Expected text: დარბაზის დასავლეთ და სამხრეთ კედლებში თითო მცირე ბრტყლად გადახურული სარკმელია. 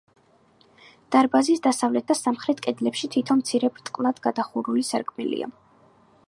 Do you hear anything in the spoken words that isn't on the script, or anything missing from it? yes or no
no